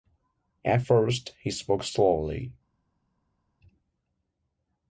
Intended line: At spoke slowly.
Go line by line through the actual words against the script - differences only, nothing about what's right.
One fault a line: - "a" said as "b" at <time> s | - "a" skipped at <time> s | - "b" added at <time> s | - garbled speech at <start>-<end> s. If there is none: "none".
- "first he" added at 0.8 s